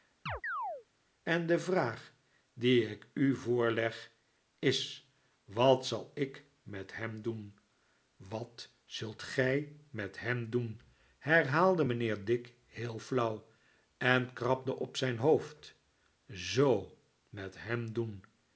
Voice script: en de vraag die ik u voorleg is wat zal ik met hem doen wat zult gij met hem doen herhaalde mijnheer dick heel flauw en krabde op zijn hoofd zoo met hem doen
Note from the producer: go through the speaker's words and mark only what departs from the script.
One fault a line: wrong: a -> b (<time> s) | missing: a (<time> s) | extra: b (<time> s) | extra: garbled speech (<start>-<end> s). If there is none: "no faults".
no faults